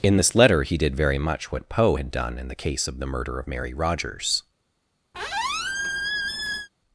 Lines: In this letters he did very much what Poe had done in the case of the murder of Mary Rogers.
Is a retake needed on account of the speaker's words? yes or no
yes